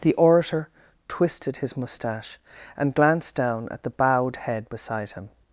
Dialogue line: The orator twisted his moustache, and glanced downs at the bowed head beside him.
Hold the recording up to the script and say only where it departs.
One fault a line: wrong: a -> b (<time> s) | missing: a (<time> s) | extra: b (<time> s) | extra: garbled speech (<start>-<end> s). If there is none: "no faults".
wrong: downs -> down (3.4 s)